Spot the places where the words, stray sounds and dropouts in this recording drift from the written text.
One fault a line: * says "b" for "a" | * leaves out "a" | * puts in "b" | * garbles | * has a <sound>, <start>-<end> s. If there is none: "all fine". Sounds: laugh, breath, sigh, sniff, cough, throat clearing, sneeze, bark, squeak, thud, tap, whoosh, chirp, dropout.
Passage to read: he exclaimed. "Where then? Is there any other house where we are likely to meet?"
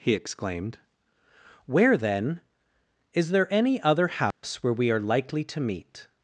* has a dropout, 4.3-4.4 s